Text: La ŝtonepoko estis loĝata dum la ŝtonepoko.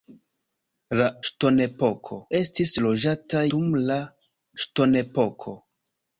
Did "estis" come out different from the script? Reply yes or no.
no